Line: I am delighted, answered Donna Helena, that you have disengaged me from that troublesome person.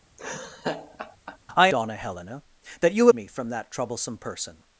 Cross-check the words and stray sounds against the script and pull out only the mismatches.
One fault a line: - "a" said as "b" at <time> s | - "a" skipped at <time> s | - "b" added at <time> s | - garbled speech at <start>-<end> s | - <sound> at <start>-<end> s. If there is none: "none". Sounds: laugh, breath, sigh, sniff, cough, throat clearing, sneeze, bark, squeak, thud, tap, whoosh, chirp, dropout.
- laugh at 0.2-1.4 s
- "am delighted answered" skipped at 1.7 s
- "have disengaged" skipped at 3.1 s